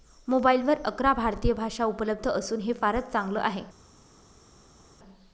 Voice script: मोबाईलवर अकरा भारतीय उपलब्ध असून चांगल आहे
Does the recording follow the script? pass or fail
fail